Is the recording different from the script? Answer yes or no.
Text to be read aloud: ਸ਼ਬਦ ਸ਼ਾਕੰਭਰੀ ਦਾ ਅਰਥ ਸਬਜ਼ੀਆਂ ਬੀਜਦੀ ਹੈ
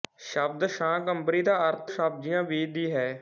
no